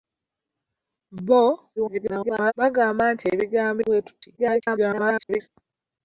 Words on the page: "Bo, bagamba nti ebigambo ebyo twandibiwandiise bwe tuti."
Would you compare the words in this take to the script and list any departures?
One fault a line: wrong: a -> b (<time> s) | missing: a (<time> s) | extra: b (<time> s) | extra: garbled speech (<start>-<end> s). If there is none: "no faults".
extra: garbled speech (1.8-2.5 s)
missing: ebyo twandibiwandiise (3.8 s)
extra: garbled speech (4.4-5.5 s)